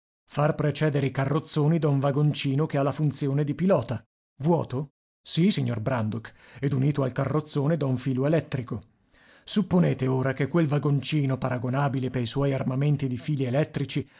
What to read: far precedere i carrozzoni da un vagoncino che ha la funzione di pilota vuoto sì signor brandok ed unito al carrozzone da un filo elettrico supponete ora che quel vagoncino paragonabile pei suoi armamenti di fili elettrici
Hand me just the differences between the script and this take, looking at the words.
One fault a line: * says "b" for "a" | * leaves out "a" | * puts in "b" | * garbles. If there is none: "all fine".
all fine